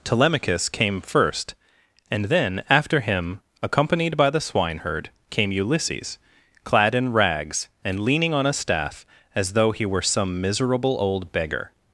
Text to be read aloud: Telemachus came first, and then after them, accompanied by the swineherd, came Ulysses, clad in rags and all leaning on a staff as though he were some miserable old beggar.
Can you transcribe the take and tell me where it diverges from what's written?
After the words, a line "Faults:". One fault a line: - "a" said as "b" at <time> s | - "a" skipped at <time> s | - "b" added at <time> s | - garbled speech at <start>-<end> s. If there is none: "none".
Telemachus came first, and then after him, accompanied by the swineherd, came Ulysses, clad in rags and leaning on a staff as though he were some miserable old beggar.
Faults:
- "them" said as "him" at 3.0 s
- "all" skipped at 8.0 s